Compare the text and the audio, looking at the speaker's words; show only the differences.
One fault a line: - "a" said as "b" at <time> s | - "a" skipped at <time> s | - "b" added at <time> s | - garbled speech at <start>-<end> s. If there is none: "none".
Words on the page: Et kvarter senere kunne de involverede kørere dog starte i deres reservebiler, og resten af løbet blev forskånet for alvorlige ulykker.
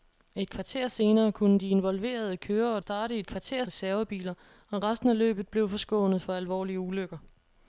- "dog" skipped at 2.8 s
- "deres" said as "kvarter" at 3.3 s